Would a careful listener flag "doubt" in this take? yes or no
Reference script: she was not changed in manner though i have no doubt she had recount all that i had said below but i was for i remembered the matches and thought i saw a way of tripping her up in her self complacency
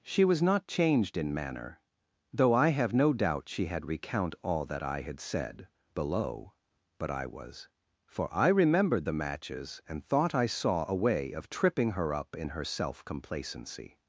no